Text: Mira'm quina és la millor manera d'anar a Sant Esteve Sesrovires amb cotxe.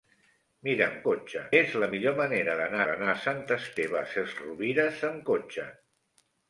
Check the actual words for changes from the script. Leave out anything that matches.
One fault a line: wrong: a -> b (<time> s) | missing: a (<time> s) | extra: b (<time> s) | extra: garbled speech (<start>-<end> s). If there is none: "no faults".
wrong: quina -> cotxe (1.1 s)
extra: d'anar (2.9 s)